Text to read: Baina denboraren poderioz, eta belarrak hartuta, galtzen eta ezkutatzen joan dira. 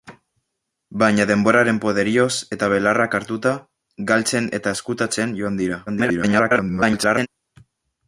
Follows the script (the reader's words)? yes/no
no